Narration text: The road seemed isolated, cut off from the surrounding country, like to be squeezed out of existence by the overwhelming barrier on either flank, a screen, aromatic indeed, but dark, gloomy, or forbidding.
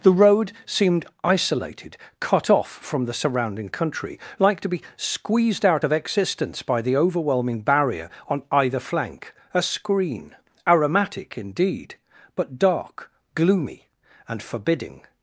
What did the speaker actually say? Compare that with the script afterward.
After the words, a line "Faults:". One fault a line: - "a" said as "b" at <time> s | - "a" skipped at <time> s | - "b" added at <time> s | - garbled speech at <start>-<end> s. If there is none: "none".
The road seemed isolated, cut off from the surrounding country, like to be squeezed out of existence by the overwhelming barrier on either flank, a screen, aromatic indeed, but dark, gloomy, and forbidding.
Faults:
- "or" said as "and" at 14.3 s